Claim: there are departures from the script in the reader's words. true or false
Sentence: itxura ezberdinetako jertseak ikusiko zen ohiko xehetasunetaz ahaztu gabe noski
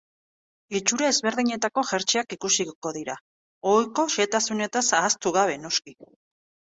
true